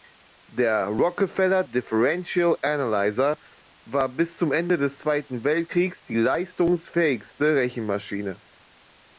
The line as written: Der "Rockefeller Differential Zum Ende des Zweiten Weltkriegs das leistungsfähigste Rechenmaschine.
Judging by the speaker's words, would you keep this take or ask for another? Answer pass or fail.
fail